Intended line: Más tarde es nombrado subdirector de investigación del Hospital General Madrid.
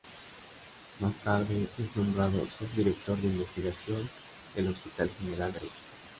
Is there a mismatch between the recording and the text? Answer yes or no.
no